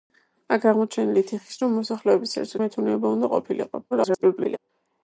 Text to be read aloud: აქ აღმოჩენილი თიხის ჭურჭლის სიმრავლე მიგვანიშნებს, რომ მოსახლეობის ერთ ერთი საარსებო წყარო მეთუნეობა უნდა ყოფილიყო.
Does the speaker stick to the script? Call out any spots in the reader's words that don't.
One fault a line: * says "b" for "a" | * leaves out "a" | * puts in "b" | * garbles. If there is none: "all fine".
* leaves out "ჭურჭლის სიმრავლე მიგვანიშნებს"
* leaves out "ერთი საარსებო წყარო"
* garbles